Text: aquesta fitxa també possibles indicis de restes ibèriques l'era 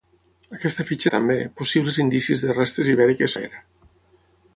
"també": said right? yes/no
yes